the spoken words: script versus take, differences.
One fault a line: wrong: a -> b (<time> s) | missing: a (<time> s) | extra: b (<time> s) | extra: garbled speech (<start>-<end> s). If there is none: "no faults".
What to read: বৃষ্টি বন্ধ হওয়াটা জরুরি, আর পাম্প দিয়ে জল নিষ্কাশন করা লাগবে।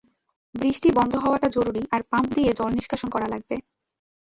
no faults